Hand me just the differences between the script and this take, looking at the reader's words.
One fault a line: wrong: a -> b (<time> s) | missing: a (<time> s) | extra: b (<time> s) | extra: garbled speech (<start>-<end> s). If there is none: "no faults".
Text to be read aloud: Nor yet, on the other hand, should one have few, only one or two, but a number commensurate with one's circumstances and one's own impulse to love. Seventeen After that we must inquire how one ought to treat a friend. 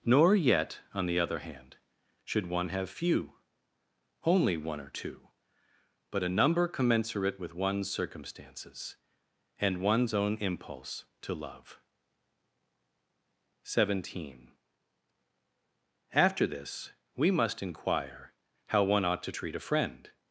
wrong: that -> this (16.5 s)